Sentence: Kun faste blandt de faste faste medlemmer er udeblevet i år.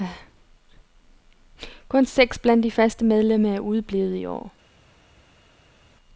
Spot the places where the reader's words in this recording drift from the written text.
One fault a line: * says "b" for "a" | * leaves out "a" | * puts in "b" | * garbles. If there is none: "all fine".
* says "seks" for "faste"
* leaves out "faste"